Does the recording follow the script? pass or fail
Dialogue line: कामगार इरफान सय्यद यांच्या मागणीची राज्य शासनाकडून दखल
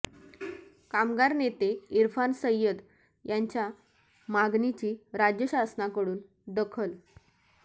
fail